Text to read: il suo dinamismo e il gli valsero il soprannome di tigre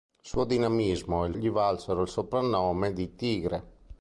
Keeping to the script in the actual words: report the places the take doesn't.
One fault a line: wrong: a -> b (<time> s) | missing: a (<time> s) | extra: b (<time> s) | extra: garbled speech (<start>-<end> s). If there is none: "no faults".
no faults